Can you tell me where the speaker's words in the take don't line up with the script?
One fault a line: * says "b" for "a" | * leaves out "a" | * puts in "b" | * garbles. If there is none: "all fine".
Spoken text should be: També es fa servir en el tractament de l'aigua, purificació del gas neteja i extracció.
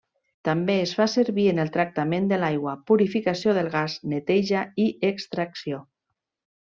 all fine